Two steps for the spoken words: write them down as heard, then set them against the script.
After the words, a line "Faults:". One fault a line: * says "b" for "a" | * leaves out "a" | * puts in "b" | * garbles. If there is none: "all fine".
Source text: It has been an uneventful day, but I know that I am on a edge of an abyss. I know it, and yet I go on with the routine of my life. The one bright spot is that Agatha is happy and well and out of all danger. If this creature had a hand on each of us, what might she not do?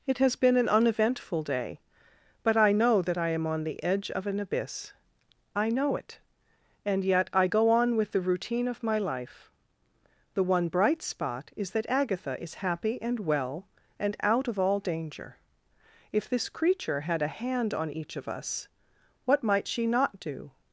It has been an uneventful day, but I know that I am on the edge of an abyss. I know it, and yet I go on with the routine of my life. The one bright spot is that Agatha is happy and well and out of all danger. If this creature had a hand on each of us, what might she not do?
Faults:
* says "the" for "a"